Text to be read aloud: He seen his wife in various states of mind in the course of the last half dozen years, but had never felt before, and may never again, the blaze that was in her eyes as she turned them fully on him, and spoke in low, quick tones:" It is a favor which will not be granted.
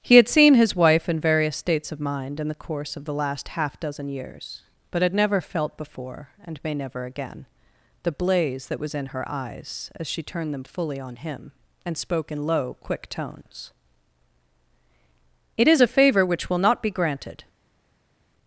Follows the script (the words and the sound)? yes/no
no